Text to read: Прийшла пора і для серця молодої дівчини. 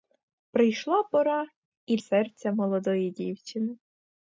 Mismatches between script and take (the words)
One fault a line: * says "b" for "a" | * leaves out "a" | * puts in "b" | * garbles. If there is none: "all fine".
* leaves out "для"